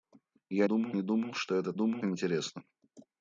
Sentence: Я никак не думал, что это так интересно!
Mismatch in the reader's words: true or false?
true